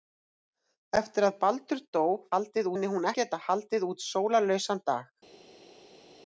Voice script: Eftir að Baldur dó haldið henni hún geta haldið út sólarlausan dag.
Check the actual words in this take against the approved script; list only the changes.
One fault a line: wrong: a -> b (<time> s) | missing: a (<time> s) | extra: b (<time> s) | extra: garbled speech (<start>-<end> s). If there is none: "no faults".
no faults